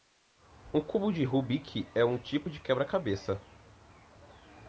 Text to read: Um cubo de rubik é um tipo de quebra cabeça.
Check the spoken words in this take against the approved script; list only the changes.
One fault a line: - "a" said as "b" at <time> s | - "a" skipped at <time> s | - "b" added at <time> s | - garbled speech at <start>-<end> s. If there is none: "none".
none